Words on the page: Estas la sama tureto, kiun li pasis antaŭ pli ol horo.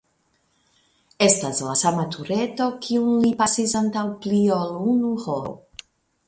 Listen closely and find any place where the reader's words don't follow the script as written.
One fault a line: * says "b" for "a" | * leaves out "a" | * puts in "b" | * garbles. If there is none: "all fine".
* puts in "unu"